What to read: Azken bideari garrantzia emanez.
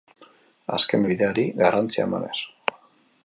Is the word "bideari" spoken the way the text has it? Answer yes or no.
yes